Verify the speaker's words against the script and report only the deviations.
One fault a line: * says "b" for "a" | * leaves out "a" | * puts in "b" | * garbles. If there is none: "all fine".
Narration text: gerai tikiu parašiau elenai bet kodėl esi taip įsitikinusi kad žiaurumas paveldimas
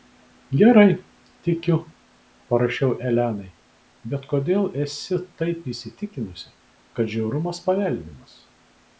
all fine